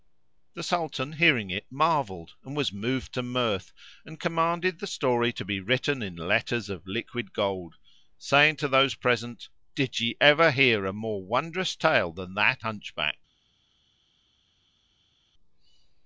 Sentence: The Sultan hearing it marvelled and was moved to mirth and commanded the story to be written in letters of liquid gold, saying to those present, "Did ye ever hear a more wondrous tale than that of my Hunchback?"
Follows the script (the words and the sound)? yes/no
no